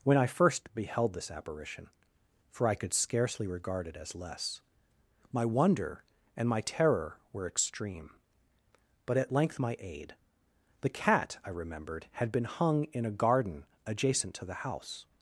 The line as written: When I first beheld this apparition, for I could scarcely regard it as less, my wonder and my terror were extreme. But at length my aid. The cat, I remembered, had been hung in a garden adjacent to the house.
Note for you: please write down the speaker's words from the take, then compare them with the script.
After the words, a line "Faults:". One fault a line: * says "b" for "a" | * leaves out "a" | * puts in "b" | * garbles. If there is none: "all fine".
When I first beheld this apparition, for I could scarcely regard it as less, my wonder and my terror were extreme. But at length my aid. The cat, I remembered, had been hung in a garden adjacent to the house.
Faults:
all fine